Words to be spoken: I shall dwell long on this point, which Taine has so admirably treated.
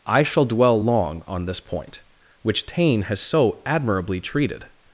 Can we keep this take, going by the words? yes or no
yes